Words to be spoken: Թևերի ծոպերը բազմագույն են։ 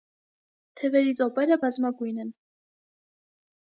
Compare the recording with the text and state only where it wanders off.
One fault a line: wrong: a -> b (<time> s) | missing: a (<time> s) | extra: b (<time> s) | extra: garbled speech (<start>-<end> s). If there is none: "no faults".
no faults